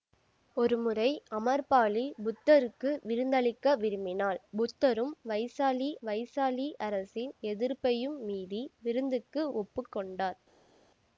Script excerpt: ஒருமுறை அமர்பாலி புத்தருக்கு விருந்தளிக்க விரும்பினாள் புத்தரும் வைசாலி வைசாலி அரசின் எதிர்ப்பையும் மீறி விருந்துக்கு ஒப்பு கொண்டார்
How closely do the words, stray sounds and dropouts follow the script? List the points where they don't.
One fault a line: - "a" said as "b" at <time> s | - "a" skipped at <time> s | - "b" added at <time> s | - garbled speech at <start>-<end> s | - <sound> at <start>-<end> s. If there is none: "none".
none